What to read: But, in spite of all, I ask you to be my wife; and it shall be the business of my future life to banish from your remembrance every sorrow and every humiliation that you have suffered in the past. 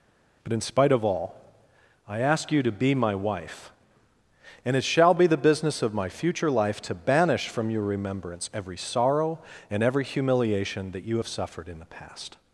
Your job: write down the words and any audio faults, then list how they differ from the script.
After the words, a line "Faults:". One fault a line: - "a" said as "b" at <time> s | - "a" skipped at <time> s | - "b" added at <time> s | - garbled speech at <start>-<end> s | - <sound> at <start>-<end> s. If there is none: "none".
But, in spite of all, I ask you to be my wife; and it shall be the business of my future life to banish from your remembrance every sorrow and every humiliation that you have suffered in the past.
Faults:
none